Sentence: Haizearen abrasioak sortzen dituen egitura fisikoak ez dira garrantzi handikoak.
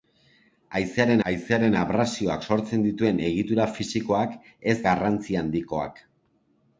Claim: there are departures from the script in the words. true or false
true